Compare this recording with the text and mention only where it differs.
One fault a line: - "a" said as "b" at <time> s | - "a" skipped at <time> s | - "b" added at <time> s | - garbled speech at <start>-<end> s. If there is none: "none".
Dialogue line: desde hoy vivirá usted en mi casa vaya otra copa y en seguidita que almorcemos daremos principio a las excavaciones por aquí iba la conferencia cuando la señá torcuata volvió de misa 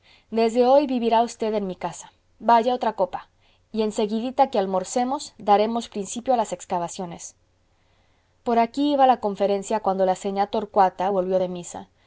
none